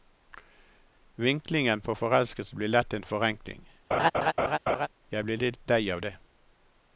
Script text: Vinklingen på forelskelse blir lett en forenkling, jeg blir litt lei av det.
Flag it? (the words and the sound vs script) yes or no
yes